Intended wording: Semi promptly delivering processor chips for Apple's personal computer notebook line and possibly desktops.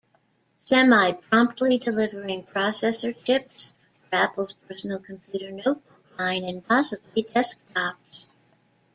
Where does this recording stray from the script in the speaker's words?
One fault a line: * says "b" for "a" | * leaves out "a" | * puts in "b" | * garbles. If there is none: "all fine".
all fine